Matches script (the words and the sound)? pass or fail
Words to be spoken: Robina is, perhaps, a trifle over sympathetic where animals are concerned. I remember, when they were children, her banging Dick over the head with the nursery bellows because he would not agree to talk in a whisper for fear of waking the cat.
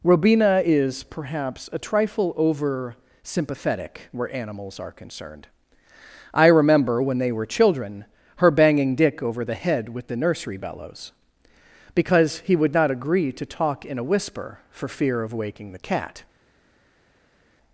pass